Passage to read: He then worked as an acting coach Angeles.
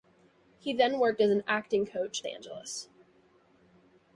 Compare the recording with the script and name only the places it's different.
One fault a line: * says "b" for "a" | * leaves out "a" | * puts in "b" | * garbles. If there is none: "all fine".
all fine